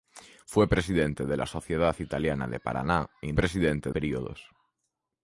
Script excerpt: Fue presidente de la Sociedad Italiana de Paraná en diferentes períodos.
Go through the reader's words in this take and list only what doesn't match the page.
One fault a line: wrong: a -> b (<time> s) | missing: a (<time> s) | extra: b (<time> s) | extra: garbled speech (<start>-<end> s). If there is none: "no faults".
wrong: diferentes -> presidente (3.3 s)